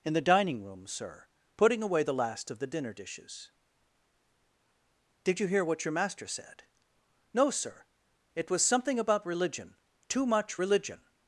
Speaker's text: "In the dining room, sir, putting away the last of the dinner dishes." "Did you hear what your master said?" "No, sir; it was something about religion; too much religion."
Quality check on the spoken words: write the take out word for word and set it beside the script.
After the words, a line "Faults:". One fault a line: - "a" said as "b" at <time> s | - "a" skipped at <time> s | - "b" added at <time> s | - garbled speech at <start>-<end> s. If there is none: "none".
"In the dining room, sir, putting away the last of the dinner dishes." "Did you hear what your master said?" "No, sir; it was something about religion; too much religion."
Faults:
none